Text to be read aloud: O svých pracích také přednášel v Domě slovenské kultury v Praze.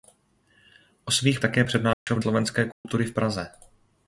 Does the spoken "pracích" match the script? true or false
false